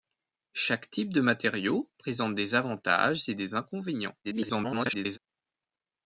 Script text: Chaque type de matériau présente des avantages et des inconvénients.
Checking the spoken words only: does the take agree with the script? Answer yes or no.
no